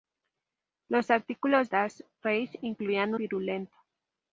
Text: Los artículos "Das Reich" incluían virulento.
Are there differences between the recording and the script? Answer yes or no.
no